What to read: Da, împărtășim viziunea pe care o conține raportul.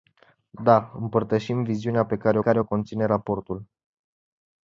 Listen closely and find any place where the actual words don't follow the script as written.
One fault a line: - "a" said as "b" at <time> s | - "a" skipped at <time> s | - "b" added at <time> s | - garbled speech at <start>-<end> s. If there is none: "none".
- "care" added at 2.4 s